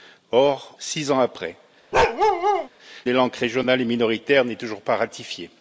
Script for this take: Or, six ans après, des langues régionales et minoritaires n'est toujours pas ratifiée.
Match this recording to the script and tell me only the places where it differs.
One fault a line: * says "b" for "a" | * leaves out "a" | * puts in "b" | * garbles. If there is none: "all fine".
all fine